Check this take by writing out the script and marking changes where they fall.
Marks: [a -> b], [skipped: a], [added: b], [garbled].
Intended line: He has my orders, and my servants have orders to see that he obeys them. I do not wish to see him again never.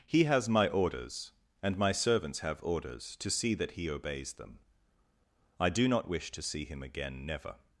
He has my orders, and my servants have orders to see that he obeys them. I do not wish to see him again never.